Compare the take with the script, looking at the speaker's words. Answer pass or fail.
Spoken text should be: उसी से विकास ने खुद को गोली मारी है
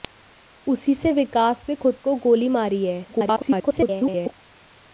fail